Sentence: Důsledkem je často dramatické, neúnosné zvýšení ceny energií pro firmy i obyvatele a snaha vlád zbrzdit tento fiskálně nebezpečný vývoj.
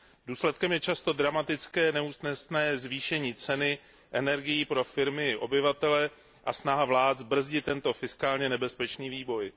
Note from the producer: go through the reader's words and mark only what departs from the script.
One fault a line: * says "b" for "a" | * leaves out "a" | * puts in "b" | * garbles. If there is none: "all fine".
all fine